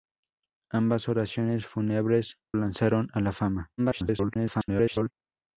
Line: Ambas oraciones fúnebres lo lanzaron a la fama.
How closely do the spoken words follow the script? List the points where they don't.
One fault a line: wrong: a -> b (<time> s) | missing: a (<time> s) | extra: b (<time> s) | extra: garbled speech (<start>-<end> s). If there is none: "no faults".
missing: lo (2.4 s)
extra: garbled speech (3.8-5.1 s)